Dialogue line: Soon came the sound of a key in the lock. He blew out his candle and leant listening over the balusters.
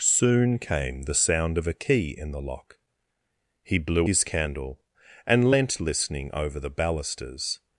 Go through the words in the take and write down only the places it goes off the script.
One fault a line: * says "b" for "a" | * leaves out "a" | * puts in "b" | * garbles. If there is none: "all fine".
* leaves out "out"